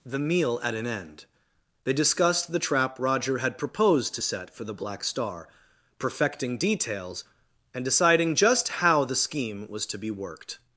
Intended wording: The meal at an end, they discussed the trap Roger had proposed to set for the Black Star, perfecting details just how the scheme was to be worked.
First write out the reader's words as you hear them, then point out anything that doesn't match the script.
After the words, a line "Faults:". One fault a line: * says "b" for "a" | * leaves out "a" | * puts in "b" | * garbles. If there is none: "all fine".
The meal at an end, they discussed the trap Roger had proposed to set for the Black Star, perfecting details and deciding just how the scheme was to be worked.
Faults:
* puts in "and deciding"